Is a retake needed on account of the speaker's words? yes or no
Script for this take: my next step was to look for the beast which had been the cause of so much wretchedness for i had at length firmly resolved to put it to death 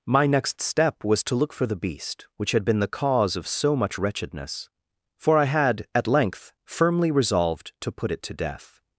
no